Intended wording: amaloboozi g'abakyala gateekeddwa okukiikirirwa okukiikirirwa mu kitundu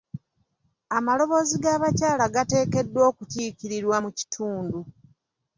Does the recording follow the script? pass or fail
fail